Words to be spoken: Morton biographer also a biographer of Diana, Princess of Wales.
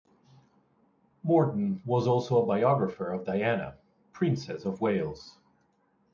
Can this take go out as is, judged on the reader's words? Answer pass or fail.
fail